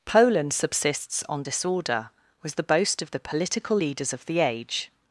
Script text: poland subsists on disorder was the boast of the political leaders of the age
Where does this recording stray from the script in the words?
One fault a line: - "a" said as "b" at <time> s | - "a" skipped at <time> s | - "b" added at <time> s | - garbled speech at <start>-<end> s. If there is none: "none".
none